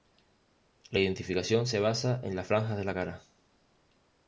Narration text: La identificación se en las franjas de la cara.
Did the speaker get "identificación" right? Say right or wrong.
right